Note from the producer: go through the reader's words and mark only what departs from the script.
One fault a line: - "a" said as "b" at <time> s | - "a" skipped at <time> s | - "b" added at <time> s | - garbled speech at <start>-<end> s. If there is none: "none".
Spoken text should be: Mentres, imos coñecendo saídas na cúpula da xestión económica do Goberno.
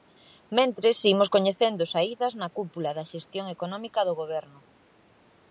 none